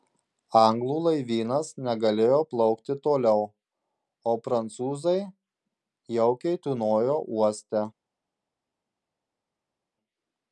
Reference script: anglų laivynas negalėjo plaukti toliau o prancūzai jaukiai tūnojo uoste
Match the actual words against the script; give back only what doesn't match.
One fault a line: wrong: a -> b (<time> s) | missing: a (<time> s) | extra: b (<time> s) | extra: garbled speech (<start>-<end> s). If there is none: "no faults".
no faults